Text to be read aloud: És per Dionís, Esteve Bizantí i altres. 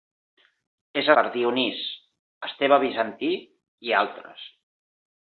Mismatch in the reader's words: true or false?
false